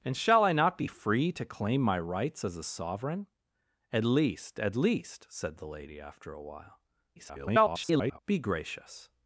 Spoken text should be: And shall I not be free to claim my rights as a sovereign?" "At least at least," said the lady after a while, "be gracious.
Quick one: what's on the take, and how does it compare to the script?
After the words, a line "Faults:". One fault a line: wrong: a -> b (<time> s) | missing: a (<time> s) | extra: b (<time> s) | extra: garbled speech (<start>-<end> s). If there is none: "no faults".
And shall I not be free to claim my rights as a sovereign?" "At least at least," said the lady after a while, [garbled] "be gracious.
Faults:
extra: garbled speech (7.2-8.2 s)